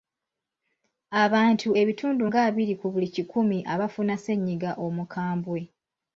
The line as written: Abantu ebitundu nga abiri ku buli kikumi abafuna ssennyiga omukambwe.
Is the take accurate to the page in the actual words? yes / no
yes